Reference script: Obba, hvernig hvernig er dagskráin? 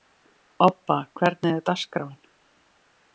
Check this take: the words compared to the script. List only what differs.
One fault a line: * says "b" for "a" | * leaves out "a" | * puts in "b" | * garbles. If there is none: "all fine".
* leaves out "hvernig"